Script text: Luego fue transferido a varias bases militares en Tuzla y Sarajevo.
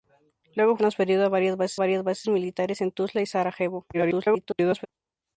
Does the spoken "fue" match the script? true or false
false